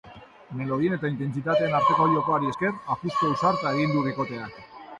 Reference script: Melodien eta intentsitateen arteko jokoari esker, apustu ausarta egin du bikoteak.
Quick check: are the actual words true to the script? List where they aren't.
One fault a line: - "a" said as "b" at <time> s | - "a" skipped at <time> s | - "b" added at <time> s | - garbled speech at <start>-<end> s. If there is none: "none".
none